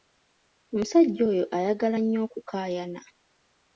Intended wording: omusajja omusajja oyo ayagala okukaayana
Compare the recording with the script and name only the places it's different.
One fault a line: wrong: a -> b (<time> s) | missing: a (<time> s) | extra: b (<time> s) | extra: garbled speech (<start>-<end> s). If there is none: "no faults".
missing: omusajja (1.2 s)
extra: nnyo (2.0 s)